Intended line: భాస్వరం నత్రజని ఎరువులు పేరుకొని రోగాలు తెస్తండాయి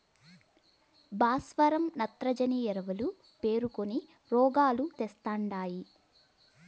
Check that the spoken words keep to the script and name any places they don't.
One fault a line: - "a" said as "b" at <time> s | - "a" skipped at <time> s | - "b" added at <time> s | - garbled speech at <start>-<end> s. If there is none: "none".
none